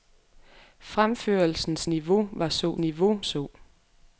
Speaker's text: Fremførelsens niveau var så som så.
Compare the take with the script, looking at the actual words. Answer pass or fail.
fail